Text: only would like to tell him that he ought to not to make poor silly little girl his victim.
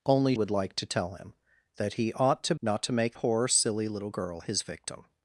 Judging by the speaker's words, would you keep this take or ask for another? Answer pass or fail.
pass